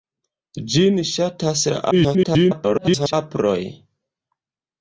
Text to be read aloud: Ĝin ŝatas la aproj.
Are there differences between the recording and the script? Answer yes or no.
yes